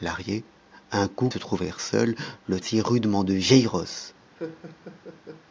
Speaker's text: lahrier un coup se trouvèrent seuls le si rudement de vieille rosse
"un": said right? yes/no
yes